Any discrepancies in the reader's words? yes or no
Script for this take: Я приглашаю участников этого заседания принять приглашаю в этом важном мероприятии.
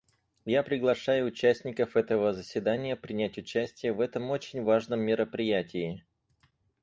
yes